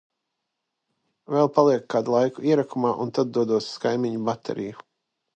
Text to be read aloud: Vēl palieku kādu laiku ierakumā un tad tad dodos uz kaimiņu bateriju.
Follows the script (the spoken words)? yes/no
no